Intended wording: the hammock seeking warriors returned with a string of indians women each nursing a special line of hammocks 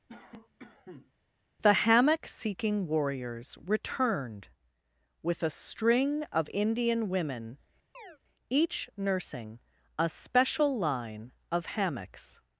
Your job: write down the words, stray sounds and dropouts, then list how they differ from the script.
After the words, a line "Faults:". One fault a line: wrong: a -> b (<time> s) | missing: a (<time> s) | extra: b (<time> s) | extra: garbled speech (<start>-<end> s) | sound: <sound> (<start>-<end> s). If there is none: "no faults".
the hammock seeking warriors returned with a string of indian women each nursing a special line of hammocks
Faults:
sound: cough (0.1-1.1 s)
wrong: indians -> indian (6.5 s)
sound: chirp (7.9-8.2 s)